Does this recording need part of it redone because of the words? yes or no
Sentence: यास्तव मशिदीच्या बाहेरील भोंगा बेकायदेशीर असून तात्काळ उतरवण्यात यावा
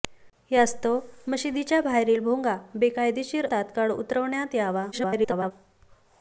yes